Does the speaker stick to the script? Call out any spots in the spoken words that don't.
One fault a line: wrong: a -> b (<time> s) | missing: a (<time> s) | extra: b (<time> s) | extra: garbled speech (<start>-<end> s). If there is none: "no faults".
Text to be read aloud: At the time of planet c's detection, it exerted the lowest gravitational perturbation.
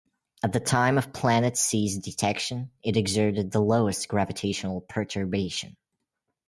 no faults